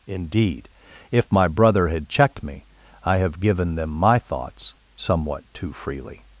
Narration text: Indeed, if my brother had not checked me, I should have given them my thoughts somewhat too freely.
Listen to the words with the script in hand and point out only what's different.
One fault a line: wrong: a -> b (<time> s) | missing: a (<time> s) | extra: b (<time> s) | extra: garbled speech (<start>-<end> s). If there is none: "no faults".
missing: not (2.1 s)
missing: should (3.2 s)